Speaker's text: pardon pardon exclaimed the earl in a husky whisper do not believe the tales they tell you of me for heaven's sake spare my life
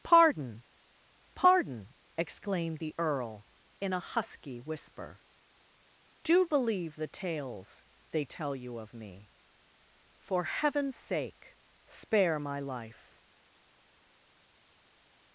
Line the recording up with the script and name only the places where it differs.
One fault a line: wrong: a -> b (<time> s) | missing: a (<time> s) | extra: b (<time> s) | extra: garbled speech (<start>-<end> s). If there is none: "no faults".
missing: not (6.5 s)